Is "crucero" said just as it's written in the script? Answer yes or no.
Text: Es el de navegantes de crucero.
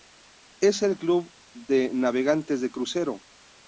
yes